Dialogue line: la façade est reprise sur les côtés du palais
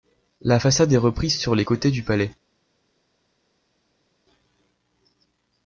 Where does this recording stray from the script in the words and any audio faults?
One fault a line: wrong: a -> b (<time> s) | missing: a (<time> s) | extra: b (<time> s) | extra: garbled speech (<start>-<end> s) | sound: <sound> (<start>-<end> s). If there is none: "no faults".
no faults